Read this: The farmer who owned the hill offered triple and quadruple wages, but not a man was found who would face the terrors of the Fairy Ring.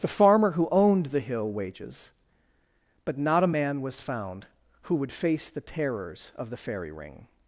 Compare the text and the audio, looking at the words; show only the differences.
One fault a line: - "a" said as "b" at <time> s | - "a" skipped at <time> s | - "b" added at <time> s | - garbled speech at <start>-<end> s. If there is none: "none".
- "offered triple and quadruple" skipped at 1.5 s